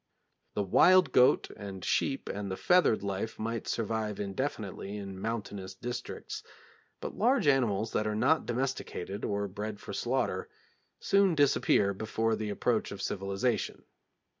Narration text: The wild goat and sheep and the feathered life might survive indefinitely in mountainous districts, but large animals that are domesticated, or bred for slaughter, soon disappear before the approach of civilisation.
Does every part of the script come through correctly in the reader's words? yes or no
no